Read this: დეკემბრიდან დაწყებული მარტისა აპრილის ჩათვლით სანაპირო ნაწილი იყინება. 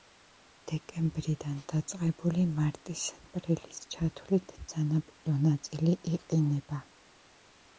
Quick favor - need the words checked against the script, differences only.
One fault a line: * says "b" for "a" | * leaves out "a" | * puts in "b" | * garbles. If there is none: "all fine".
all fine